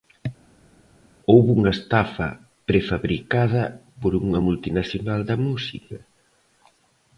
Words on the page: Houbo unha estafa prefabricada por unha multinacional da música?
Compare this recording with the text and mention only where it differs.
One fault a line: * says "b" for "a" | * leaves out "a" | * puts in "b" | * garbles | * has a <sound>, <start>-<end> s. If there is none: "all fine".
all fine